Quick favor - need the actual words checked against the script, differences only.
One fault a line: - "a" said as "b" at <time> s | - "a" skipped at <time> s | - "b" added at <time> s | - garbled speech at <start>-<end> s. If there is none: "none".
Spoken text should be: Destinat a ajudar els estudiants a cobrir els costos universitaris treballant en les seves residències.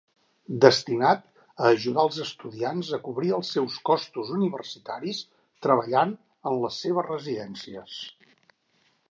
- "seus" added at 3.6 s